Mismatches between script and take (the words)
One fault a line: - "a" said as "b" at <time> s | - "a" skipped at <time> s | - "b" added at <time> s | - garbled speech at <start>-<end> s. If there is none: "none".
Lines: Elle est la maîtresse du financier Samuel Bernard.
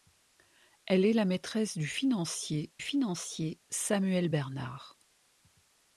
- "financier" added at 2.8 s